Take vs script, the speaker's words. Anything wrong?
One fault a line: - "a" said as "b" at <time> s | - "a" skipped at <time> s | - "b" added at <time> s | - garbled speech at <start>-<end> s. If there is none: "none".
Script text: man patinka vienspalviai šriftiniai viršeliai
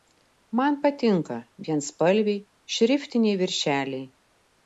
none